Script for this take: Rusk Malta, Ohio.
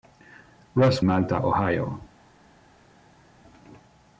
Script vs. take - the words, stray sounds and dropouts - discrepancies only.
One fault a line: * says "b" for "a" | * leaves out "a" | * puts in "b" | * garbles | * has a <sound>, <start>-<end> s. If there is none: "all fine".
all fine